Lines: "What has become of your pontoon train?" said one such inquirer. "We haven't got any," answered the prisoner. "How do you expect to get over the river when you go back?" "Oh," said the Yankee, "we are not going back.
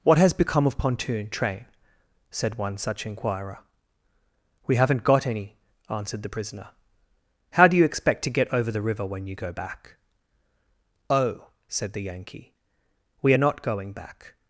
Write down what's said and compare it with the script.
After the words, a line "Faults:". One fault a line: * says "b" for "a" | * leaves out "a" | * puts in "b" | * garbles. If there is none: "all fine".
"What has become of pontoon train?" said one such inquirer. "We haven't got any," answered the prisoner. "How do you expect to get over the river when you go back?" "Oh," said the Yankee, "we are not going back.
Faults:
* leaves out "your"